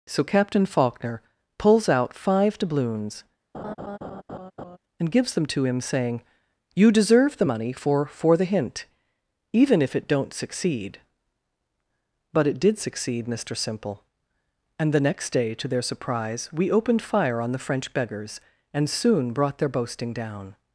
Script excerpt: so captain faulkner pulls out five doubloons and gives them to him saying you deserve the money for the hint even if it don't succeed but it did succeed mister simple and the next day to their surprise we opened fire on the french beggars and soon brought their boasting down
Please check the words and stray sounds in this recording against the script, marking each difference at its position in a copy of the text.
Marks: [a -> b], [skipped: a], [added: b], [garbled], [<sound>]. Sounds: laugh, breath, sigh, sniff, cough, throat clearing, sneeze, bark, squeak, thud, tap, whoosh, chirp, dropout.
so captain faulkner pulls out five doubloons [laugh] and gives them to him saying you deserve the money for [added: for] the hint even if it don't succeed but it did succeed mister simple and the next day to their surprise we opened fire on the french beggars and soon brought their boasting down